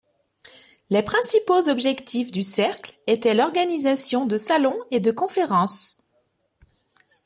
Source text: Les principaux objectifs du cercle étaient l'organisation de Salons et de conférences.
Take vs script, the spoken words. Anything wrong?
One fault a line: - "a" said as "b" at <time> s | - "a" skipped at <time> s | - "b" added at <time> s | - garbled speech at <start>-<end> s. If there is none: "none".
none